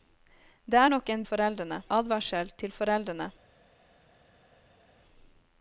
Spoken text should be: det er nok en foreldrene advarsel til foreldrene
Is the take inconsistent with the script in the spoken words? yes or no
no